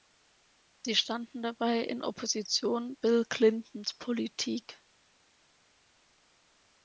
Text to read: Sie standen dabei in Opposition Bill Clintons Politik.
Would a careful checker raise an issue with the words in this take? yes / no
no